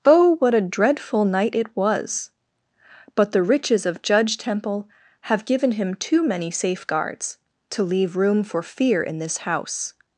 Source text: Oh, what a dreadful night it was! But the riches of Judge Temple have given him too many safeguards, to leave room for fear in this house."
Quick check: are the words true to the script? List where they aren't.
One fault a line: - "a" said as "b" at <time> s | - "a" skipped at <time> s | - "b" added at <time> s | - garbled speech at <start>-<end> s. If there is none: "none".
none